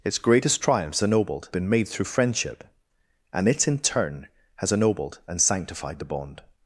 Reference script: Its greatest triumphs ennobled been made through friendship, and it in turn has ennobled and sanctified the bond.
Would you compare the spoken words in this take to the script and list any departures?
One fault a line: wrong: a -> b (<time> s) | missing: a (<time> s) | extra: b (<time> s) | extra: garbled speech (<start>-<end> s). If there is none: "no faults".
no faults